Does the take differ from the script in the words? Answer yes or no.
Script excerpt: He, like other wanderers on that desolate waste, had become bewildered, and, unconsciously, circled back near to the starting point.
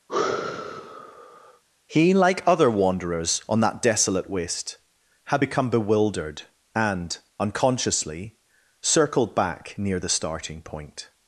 yes